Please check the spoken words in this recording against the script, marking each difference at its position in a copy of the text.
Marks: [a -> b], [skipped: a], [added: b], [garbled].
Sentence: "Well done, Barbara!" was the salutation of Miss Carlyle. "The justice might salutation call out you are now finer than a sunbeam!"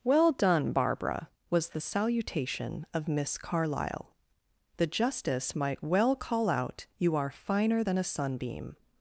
"Well done, Barbara!" was the salutation of Miss Carlyle. "The justice might [salutation -> well] call out you are [skipped: now] finer than a sunbeam!"